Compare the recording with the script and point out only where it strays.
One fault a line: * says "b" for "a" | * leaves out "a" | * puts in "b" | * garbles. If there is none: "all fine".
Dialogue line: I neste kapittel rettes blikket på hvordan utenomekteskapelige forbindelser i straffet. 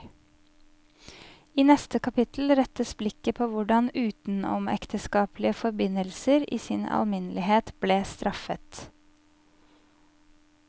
* puts in "sin alminnelighet ble"